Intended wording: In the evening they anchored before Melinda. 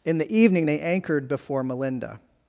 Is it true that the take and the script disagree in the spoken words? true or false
false